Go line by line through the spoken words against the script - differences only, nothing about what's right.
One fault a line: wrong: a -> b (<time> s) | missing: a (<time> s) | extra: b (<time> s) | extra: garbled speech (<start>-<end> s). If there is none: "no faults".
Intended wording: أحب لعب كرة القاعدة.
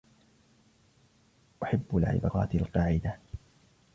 no faults